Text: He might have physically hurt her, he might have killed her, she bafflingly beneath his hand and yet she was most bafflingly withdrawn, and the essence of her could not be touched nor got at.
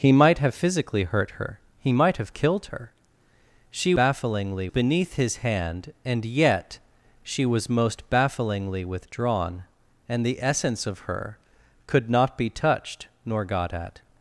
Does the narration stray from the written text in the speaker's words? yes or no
no